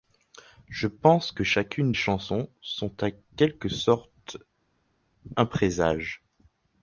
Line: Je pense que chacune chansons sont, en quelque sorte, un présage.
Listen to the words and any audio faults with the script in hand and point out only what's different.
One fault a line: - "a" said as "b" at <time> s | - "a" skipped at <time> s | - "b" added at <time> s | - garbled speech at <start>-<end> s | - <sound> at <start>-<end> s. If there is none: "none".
none